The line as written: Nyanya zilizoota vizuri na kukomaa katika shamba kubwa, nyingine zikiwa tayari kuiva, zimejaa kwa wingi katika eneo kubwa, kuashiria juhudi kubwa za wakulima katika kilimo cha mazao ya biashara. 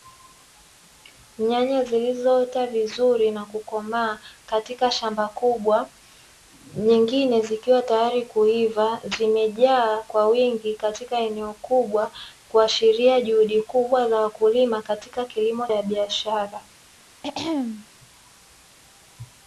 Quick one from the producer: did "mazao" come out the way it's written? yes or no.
no